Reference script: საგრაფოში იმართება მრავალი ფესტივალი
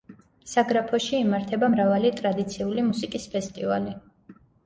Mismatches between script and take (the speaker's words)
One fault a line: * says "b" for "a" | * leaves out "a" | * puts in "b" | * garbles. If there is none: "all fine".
* puts in "ტრადიციული მუსიკის"